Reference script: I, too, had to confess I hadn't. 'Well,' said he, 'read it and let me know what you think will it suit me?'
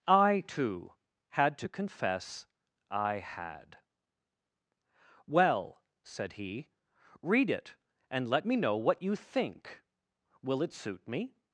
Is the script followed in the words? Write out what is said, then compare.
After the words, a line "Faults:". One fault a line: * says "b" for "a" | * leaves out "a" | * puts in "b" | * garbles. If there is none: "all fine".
I, too, had to confess I had. 'Well,' said he, 'read it and let me know what you think will it suit me?'
Faults:
* says "had" for "hadn't"